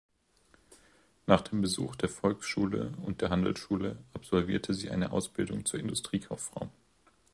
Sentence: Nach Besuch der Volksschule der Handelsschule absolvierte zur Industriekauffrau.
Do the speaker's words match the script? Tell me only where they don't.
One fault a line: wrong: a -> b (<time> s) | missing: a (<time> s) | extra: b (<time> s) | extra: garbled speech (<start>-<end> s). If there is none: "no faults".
extra: dem (1.4 s)
extra: und (3.0 s)
extra: sie eine Ausbildung (4.7 s)